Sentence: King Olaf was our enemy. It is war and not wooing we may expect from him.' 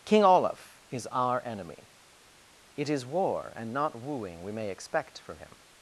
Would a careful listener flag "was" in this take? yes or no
yes